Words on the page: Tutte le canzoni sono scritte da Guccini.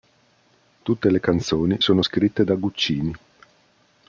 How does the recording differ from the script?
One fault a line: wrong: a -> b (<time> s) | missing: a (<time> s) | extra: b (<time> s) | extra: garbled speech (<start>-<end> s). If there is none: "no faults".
no faults